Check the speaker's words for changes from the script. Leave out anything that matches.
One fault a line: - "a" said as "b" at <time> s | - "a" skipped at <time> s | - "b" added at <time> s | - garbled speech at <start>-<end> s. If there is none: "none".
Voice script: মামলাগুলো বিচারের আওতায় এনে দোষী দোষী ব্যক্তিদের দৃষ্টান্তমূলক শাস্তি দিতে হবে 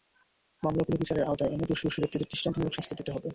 none